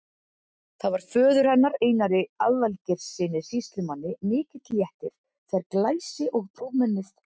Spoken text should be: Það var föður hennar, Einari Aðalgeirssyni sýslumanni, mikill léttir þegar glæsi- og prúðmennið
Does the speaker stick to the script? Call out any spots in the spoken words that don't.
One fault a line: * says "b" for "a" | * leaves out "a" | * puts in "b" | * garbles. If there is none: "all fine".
all fine